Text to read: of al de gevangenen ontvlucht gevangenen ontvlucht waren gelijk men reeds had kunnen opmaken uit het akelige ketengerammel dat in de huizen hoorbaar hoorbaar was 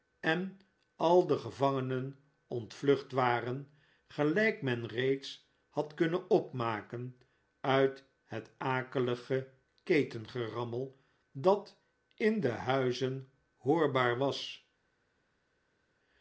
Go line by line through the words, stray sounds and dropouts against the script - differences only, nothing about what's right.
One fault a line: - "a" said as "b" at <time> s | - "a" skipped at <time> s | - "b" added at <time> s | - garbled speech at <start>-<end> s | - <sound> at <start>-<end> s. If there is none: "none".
- "of" said as "en" at 0.2 s
- "gevangenen ontvlucht" skipped at 3.1 s
- "hoorbaar" skipped at 14.2 s